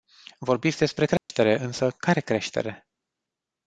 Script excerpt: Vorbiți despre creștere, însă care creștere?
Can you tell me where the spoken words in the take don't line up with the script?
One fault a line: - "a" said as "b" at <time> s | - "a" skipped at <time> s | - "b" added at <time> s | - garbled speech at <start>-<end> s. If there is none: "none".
none